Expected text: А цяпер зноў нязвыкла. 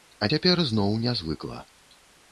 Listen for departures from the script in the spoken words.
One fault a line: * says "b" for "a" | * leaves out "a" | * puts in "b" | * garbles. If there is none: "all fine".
all fine